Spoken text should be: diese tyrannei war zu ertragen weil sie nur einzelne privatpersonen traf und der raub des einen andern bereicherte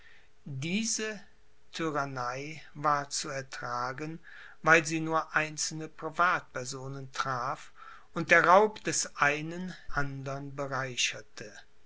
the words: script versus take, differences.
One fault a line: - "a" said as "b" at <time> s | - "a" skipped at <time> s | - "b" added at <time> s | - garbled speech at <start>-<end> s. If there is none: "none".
none